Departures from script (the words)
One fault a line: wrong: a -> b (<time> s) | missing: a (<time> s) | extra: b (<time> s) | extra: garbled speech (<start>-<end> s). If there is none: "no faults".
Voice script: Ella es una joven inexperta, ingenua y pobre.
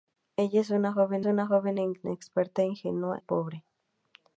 extra: una joven (1.3 s)
missing: y (3.2 s)